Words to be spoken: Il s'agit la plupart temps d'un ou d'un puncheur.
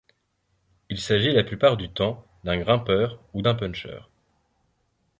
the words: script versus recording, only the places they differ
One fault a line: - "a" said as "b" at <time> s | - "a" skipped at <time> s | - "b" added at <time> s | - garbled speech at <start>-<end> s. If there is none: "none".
- "du" added at 1.8 s
- "grimpeur" added at 2.6 s